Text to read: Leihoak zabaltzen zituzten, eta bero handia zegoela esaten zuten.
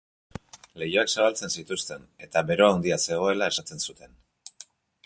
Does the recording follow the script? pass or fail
pass